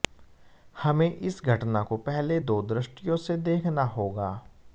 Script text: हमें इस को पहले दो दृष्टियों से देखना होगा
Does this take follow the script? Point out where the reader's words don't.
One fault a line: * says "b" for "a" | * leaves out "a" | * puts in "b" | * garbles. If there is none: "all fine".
* puts in "घटना"